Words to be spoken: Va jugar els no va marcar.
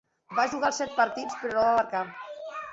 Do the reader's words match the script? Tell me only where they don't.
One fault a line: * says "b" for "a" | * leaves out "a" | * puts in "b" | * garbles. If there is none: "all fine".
* puts in "set partits però"